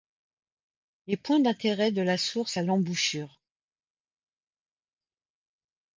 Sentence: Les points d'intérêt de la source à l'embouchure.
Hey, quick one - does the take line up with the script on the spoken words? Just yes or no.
yes